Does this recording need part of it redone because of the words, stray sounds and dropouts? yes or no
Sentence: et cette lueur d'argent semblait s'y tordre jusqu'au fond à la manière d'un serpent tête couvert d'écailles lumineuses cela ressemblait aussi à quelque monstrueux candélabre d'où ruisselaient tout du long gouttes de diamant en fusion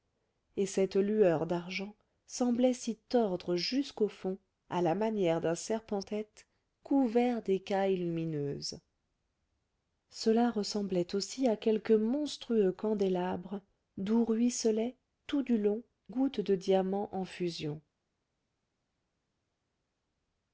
no